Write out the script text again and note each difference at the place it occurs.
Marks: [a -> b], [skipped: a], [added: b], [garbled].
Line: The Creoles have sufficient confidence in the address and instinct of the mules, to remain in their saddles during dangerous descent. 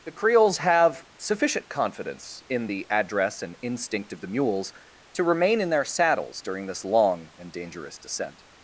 The Creoles have sufficient confidence in the address and instinct of the mules, to remain in their saddles during [added: this long and] dangerous descent.